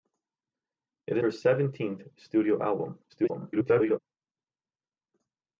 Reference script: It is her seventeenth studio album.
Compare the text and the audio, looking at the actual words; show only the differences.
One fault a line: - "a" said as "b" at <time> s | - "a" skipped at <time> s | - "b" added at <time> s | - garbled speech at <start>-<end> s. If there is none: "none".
- "is" skipped at 1.2 s
- garbled speech at 3.1-4.0 s